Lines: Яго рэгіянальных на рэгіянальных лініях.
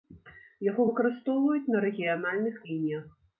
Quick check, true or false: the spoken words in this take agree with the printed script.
false